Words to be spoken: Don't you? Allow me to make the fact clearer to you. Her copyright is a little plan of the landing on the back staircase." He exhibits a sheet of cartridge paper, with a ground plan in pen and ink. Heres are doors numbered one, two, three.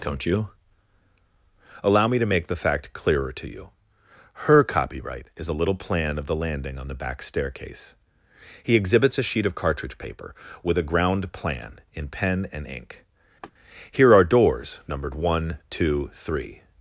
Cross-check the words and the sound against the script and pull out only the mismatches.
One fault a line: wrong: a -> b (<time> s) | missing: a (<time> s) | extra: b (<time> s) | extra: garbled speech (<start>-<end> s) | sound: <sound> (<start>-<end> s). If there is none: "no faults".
sound: laugh (13.4-13.5 s)
wrong: Heres -> Here (13.9 s)